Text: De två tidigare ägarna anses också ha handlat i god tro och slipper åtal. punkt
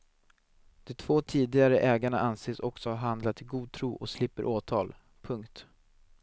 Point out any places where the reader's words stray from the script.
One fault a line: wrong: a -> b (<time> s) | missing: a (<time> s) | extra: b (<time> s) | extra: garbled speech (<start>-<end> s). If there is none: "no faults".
no faults